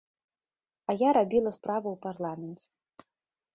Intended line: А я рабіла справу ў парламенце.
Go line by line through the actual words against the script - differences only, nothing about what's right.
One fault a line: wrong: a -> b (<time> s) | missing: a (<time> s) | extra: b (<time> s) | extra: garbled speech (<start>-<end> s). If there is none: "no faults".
no faults